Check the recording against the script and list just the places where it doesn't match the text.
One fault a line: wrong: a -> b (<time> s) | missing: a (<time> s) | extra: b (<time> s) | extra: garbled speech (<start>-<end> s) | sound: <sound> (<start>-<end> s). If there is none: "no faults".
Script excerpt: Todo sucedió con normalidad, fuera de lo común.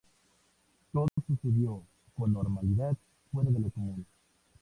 sound: dropout (1.1-1.2 s)